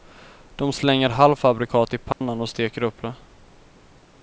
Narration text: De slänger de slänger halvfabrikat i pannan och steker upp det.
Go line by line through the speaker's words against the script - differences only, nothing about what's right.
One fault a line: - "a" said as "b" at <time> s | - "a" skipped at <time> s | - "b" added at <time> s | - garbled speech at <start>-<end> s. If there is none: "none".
- "de slänger" skipped at 1.1 s